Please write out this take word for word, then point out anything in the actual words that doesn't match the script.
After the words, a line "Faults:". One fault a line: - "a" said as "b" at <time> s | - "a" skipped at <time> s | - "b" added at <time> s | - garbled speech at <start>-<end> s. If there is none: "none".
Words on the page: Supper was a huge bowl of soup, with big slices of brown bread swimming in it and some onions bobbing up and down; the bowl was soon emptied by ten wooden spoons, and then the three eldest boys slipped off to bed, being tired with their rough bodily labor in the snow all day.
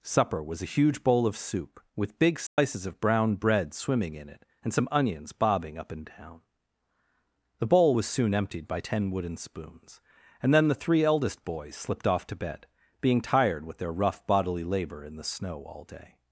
Supper was a huge bowl of soup, with big slices of brown bread swimming in it and some onions bobbing up and down; the bowl was soon emptied by ten wooden spoons, and then the three eldest boys slipped off to bed, being tired with their rough bodily labor in the snow all day.
Faults:
none